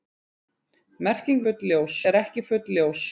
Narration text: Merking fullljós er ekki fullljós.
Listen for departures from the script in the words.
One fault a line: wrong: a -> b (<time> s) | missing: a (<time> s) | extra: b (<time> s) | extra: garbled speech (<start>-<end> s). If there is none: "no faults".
no faults